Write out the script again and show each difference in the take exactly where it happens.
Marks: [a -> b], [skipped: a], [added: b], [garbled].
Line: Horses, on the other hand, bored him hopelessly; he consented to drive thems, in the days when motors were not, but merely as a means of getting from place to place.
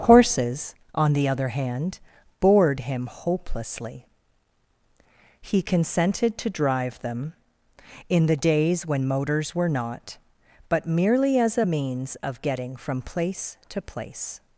Horses, on the other hand, bored him hopelessly; he consented to drive [thems, -> them] in the days when motors were not, but merely as a means of getting from place to place.